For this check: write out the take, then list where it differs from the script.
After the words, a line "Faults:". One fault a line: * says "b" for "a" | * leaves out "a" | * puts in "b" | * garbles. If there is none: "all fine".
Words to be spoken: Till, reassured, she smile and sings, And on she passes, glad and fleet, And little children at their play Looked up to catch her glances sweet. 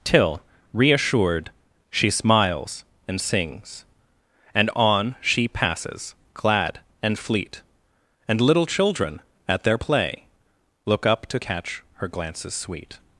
Till, reassured, she smiles and sings, And on she passes, glad and fleet, And little children at their play Look up to catch her glances sweet.
Faults:
* says "smiles" for "smile"
* says "Look" for "Looked"